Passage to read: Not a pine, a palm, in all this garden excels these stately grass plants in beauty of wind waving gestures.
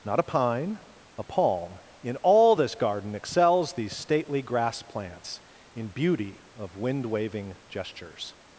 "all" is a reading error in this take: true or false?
false